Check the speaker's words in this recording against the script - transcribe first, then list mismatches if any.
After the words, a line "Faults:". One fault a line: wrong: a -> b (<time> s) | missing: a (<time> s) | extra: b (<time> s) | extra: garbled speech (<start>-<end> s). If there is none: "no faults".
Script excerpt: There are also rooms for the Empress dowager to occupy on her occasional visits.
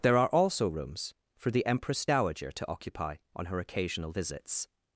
There are also rooms for the Empress dowager to occupy on her occasional visits.
Faults:
no faults